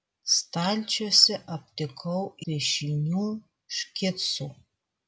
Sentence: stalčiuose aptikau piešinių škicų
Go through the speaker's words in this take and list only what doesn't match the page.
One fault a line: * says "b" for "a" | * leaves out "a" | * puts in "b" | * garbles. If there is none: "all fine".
all fine